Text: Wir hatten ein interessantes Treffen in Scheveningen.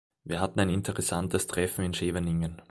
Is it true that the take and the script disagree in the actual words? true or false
false